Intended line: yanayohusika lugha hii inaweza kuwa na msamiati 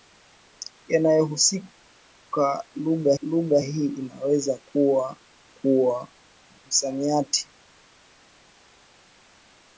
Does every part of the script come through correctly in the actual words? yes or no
no